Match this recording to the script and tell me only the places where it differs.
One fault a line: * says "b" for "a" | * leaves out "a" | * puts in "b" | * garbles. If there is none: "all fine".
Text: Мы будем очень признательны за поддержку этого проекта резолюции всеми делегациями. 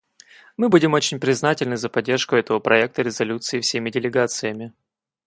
all fine